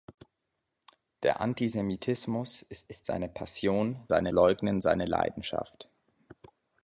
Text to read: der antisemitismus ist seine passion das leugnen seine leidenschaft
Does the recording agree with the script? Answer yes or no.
no